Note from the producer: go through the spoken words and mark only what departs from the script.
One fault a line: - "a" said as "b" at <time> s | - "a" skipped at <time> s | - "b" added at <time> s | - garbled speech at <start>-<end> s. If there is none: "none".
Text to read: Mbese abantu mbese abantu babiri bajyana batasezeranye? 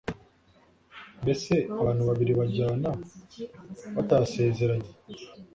- "mbese abantu" skipped at 2.0 s